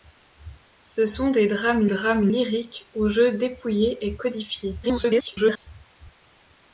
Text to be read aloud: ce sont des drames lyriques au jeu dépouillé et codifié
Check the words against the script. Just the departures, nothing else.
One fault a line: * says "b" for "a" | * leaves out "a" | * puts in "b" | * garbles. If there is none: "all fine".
* puts in "drames"
* garbles